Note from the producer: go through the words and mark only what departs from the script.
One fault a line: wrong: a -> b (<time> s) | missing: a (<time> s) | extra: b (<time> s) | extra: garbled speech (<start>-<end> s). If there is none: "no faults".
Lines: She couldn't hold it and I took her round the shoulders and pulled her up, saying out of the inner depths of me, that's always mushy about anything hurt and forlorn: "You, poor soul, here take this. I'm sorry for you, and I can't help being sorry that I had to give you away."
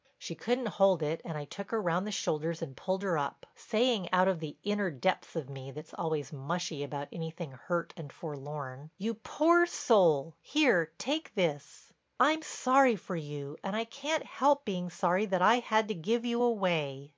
no faults